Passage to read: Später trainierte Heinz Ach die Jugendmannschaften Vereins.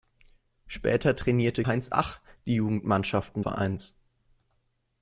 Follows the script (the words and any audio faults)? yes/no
yes